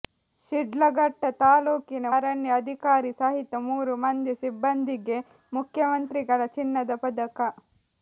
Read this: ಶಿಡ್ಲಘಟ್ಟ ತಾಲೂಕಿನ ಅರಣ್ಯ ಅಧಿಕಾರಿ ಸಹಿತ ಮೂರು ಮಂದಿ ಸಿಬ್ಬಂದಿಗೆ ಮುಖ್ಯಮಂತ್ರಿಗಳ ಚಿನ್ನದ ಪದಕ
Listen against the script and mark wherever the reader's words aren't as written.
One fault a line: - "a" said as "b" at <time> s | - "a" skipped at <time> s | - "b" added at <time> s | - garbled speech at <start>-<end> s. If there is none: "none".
none